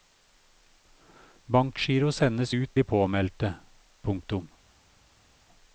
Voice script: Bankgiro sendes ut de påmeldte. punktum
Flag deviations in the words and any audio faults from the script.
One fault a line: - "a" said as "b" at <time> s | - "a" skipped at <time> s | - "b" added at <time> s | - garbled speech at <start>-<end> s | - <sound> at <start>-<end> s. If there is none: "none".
none